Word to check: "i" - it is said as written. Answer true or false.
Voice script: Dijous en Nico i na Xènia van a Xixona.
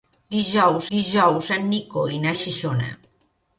true